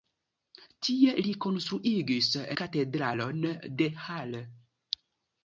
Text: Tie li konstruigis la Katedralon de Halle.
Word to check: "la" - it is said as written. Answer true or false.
false